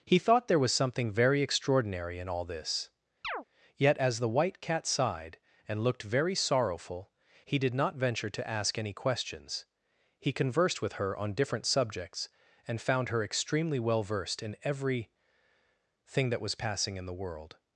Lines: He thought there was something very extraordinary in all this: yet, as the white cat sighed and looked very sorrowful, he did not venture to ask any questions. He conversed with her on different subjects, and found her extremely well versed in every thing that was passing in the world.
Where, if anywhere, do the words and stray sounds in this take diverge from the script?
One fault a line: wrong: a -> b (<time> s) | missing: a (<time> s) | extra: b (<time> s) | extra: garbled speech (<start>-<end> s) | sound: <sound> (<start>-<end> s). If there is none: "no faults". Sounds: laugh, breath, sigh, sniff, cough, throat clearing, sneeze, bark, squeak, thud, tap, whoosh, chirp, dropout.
sound: chirp (3.2-3.4 s)